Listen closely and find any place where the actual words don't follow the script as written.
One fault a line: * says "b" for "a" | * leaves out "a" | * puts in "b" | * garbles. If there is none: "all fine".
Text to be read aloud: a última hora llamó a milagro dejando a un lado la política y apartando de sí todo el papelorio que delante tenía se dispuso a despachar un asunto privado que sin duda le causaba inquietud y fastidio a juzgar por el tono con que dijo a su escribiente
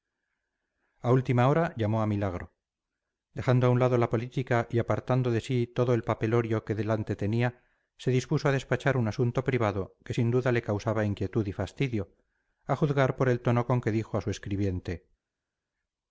all fine